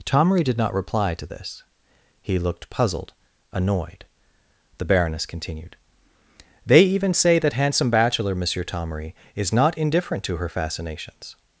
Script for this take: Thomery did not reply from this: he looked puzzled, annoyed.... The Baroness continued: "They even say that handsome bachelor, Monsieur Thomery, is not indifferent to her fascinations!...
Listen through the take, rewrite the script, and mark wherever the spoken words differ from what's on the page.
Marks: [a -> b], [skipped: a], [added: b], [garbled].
Thomery did not reply [from -> to] this: he looked puzzled, annoyed.... The Baroness continued: "They even say that handsome bachelor, Monsieur Thomery, is not indifferent to her fascinations!...